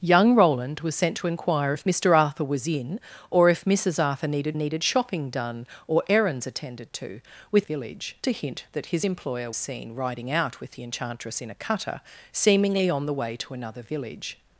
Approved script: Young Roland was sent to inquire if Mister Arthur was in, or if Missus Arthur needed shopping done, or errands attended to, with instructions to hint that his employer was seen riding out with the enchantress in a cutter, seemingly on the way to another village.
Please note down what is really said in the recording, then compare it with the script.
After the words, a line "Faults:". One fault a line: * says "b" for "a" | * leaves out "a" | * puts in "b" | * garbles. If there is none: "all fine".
Young Roland was sent to inquire if Mister Arthur was in, or if Missus Arthur needed needed shopping done, or errands attended to, with village to hint that his employer seen riding out with the enchantress in a cutter, seemingly on the way to another village.
Faults:
* puts in "needed"
* says "village" for "instructions"
* leaves out "was"